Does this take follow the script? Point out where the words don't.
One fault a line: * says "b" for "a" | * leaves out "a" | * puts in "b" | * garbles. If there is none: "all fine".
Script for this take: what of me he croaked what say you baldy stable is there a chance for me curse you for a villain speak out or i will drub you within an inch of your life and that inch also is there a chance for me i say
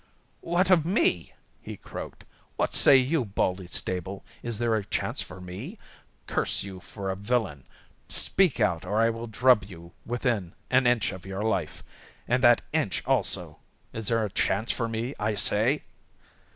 all fine